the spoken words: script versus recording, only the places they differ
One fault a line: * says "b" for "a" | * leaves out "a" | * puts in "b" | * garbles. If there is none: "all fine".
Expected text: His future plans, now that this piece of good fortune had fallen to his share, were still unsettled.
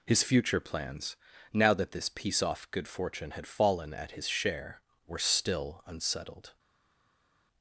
* says "off" for "of"
* says "at" for "to"